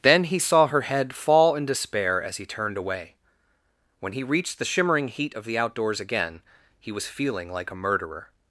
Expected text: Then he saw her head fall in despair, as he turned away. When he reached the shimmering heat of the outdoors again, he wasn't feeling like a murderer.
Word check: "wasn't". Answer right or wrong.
wrong